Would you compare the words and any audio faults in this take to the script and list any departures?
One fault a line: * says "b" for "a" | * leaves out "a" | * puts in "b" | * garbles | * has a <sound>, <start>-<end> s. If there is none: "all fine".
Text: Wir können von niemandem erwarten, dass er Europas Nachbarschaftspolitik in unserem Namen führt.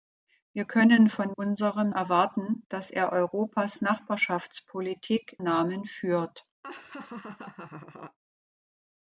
* says "unserem" for "niemandem"
* leaves out "in unserem"
* has a laugh, 6.6-8.2 s